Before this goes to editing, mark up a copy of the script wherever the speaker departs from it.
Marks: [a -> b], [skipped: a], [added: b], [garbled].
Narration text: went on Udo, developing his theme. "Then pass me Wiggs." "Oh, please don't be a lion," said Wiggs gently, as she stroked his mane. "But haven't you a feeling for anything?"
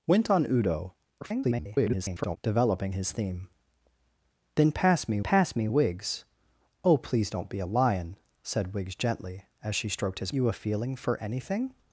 went on Udo, [garbled] developing his theme. "Then pass me [added: pass me] Wiggs." "Oh, please don't be a lion," said Wiggs gently, as she stroked his [skipped: mane. "But haven't] you a feeling for anything?"